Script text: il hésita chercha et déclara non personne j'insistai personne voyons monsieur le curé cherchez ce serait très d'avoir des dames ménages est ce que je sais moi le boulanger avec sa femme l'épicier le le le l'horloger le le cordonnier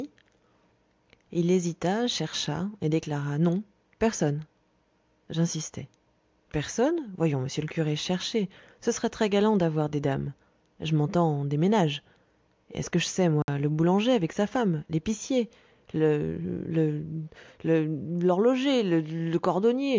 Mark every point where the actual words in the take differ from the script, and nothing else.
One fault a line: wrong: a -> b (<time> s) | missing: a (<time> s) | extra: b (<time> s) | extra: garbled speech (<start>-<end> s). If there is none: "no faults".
extra: galant (9.3 s)
extra: je m'entends des (10.8 s)